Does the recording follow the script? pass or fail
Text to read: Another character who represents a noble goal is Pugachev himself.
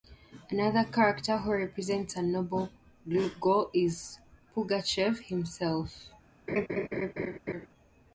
pass